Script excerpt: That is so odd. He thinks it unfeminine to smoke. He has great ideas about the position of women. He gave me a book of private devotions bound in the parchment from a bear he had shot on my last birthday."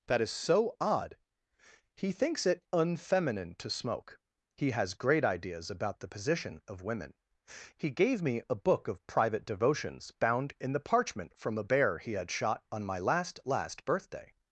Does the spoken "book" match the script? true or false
true